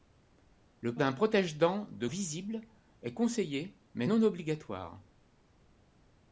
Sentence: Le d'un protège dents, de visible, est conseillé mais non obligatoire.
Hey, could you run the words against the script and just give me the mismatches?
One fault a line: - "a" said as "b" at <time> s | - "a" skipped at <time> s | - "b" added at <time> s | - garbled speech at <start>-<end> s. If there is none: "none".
none